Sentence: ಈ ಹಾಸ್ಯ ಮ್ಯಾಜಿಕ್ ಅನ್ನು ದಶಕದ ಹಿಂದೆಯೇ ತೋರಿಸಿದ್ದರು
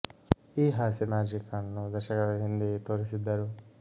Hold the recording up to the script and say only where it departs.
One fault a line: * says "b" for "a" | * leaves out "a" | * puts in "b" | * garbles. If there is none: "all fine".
all fine